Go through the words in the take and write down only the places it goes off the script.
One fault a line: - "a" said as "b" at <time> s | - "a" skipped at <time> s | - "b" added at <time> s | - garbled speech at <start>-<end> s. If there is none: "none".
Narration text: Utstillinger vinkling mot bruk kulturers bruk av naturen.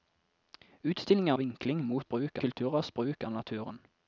none